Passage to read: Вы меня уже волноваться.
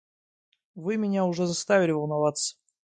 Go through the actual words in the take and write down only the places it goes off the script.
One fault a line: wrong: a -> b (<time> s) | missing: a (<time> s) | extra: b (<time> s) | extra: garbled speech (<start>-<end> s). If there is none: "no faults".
extra: заставили (1.4 s)